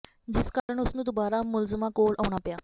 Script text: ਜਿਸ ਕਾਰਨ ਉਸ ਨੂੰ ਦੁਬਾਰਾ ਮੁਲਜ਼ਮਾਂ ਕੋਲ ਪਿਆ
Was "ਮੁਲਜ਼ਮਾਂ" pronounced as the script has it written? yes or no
yes